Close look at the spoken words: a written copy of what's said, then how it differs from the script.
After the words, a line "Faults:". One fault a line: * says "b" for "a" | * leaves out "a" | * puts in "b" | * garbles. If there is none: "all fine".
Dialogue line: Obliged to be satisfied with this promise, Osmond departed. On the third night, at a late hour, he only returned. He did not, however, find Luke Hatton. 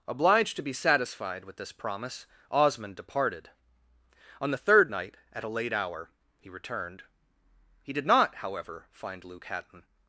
Obliged to be satisfied with this promise, Osmond departed. On the third night, at a late hour, he returned. He did not, however, find Luke Hatton.
Faults:
* leaves out "only"